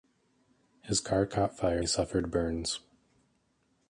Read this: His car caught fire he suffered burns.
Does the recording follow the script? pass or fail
pass